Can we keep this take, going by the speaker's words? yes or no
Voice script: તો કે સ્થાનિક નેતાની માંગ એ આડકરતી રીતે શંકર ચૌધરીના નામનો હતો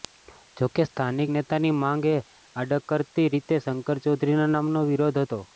no